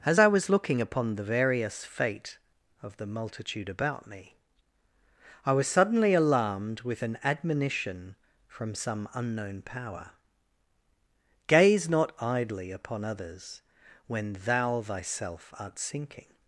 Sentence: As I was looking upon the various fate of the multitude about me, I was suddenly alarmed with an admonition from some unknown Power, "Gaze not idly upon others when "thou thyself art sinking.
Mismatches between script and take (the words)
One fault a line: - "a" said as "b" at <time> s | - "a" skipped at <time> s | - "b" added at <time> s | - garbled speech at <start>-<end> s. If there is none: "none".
none